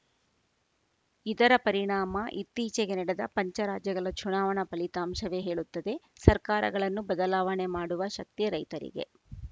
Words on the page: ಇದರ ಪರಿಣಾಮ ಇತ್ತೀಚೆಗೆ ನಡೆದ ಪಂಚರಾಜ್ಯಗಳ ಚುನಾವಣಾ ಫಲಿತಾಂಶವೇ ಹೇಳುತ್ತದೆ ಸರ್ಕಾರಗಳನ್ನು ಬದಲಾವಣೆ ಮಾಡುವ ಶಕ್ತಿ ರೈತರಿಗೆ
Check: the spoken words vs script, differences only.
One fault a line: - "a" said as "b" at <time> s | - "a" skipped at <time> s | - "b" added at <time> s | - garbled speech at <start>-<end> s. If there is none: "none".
none